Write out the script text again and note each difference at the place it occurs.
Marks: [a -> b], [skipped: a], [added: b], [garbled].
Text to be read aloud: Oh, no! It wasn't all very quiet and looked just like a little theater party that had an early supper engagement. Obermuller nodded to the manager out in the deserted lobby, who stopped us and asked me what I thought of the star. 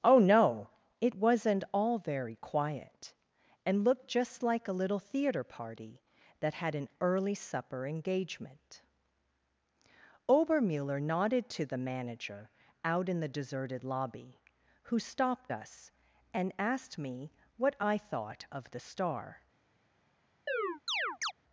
Oh, no! It wasn't all very quiet and looked just like a little theater party that had an early supper engagement. Obermuller nodded to the manager out in the deserted lobby, who stopped us and asked me what I thought of the star.